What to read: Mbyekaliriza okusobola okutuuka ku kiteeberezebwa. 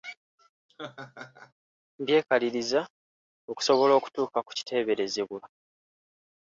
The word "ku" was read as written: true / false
true